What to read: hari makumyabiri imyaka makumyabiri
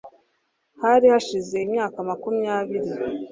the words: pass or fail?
fail